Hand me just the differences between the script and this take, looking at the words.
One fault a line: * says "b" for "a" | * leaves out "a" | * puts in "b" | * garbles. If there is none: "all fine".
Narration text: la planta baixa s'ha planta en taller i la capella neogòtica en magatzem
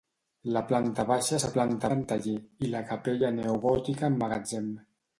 all fine